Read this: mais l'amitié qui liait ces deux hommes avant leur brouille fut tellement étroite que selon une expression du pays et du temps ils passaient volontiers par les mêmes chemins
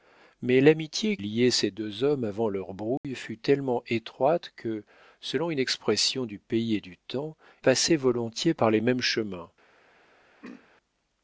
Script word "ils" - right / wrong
wrong